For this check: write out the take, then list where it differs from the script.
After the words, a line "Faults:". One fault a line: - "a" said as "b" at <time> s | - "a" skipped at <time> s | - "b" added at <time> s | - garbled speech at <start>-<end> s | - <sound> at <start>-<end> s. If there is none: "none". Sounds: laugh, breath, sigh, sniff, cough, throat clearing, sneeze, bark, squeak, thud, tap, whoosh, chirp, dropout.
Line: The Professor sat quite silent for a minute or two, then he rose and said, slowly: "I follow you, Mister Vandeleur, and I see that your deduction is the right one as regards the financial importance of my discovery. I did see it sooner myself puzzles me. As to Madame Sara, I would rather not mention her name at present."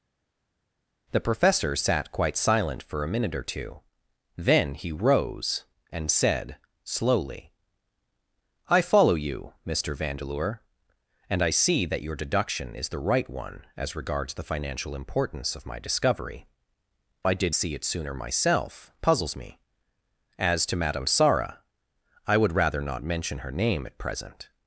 The Professor sat quite silent for a minute or two, then he rose and said, slowly: "I follow you, Mister Vandeleur, and I see that your deduction is the right one as regards the financial importance of my discovery. I did see it sooner myself puzzles me. As to Madame Sara, I would rather not mention her name at present."
Faults:
none